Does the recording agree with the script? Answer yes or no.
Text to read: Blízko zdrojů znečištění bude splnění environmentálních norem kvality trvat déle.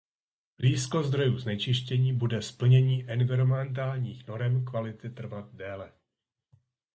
yes